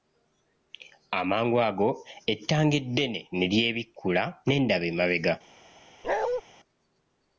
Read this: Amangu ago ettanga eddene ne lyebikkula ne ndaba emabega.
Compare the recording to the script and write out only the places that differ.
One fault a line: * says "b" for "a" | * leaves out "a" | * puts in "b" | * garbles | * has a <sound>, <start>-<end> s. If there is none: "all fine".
* has a bark, 6.0-6.4 s